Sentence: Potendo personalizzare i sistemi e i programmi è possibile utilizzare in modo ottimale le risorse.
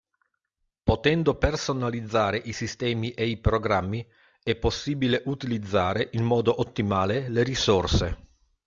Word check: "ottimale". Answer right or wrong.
right